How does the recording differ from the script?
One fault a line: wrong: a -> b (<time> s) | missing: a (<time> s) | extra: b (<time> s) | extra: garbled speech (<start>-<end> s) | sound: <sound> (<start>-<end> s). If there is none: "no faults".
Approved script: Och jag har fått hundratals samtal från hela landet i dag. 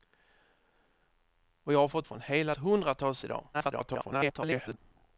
missing: hundratals samtal (2.1 s)
wrong: landet -> hundratals (2.6 s)
extra: garbled speech (3.5-4.8 s)